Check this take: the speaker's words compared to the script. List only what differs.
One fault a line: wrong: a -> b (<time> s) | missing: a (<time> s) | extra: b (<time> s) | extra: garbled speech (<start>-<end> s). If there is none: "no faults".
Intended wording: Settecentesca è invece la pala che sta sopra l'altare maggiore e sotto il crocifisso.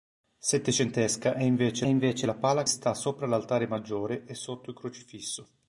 extra: invece (1.9 s)
missing: che (2.6 s)